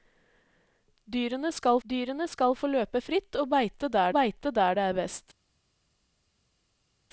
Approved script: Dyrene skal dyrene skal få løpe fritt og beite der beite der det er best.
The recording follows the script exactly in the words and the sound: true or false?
true